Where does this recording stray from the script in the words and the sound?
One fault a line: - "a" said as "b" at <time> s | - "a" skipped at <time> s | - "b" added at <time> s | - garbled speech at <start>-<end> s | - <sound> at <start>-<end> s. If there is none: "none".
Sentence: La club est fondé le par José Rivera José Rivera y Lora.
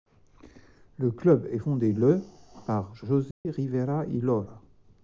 - "La" said as "Le" at 1.0 s
- dropout at 3.3-3.5 s
- "José Rivera" skipped at 4.1 s